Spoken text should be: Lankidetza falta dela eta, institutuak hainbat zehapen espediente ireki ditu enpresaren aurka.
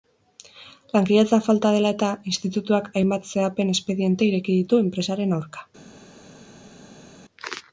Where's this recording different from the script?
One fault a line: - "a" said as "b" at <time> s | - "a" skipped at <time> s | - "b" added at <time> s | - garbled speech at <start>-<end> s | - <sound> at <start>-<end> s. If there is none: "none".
none